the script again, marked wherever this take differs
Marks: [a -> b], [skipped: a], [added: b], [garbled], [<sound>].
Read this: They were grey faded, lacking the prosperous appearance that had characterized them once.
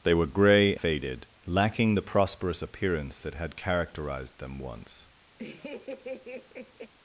They were grey faded, lacking the prosperous appearance that had characterized them once. [laugh]